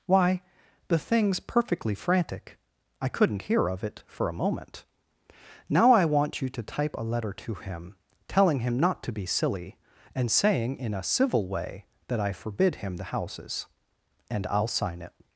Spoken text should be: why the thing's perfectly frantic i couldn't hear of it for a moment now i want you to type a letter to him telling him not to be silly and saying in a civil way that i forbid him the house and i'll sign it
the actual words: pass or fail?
fail